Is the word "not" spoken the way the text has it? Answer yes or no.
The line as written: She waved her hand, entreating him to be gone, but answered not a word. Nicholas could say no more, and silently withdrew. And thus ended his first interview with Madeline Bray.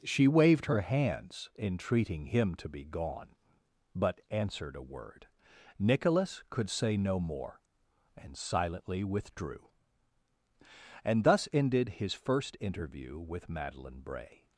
no